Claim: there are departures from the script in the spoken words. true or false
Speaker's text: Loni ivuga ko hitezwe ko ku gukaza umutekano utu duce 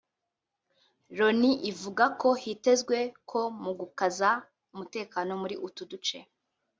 true